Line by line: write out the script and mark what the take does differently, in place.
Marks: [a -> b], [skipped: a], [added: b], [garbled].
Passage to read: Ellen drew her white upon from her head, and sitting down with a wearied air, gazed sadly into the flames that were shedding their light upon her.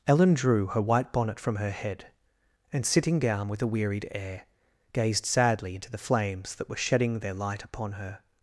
Ellen drew her white [upon -> bonnet] from her head, and sitting down with a wearied air, gazed sadly into the flames that were shedding their light upon her.